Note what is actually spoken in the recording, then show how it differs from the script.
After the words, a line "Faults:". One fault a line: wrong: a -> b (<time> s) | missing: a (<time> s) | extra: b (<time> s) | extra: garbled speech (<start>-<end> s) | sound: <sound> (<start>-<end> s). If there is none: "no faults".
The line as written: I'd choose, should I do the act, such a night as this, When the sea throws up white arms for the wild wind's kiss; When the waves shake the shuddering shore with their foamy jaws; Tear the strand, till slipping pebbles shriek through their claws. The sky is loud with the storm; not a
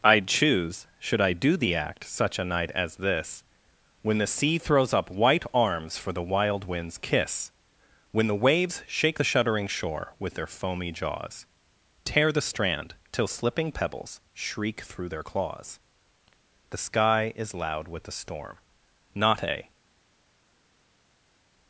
I'd choose, should I do the act, such a night as this, When the sea throws up white arms for the wild wind's kiss; When the waves shake the shuddering shore with their foamy jaws; Tear the strand, till slipping pebbles shriek through their claws. The sky is loud with the storm; not a
Faults:
no faults